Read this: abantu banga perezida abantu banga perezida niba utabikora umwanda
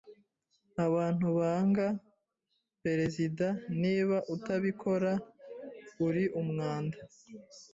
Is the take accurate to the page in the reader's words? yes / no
no